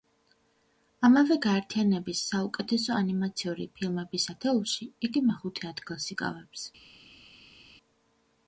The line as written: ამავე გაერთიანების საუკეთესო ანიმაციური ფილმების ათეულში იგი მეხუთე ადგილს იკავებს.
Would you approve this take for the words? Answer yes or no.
yes